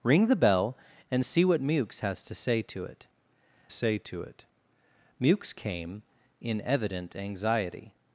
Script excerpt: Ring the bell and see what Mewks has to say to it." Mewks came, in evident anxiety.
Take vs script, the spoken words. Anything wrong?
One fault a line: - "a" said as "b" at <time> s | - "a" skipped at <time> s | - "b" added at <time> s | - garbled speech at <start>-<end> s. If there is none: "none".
- "say to it" added at 3.7 s